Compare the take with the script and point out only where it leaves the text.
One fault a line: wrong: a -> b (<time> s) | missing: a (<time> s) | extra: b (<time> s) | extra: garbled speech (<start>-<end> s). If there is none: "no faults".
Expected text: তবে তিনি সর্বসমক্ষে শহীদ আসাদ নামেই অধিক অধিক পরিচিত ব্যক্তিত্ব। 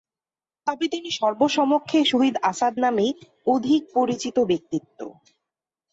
missing: অধিক (3.8 s)